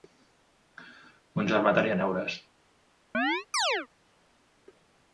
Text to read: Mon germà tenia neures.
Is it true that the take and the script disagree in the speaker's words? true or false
false